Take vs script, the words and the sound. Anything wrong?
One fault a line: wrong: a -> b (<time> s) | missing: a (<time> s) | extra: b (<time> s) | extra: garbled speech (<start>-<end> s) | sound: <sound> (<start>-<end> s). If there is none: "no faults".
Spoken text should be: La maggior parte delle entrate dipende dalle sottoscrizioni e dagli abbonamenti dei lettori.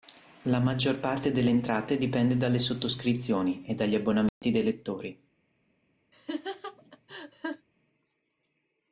sound: dropout (4.3-4.4 s)
sound: laugh (6.1-7.7 s)